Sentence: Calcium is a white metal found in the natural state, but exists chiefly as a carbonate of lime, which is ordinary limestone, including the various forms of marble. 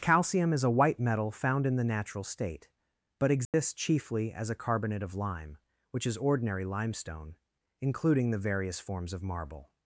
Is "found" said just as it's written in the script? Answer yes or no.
yes